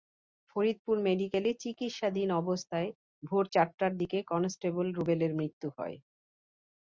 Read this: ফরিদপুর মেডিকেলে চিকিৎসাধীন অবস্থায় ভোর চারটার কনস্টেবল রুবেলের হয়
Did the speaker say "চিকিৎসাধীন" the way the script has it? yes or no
yes